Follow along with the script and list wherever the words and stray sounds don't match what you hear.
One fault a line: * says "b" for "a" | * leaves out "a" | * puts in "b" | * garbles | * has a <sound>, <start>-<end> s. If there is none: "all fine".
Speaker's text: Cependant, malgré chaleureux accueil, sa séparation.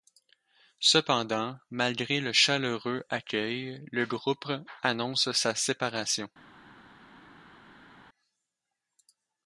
* puts in "le"
* puts in "le groupe annonce"